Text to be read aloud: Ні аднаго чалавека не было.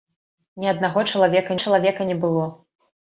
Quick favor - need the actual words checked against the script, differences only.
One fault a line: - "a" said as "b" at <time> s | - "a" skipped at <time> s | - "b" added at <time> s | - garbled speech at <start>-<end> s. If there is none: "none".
- "чалавека" added at 1.6 s